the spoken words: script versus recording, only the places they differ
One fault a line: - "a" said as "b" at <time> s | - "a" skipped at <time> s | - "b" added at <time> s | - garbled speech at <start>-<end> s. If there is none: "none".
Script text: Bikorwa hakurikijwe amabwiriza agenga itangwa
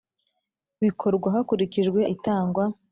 - "amabwiriza agenga" skipped at 2.0 s